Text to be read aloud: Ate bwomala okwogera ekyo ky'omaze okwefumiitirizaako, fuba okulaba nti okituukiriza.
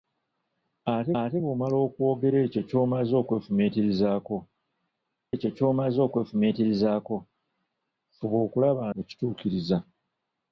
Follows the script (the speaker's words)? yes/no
no